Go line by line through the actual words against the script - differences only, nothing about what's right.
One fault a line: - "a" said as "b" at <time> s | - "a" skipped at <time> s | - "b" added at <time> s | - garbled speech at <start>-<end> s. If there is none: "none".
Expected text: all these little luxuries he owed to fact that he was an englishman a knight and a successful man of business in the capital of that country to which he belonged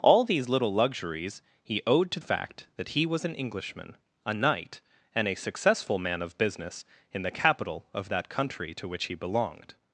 none